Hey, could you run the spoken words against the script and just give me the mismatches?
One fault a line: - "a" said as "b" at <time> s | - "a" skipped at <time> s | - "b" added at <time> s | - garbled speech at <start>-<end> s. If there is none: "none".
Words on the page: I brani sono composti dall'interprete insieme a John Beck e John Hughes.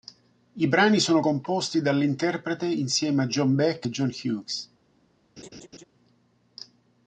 none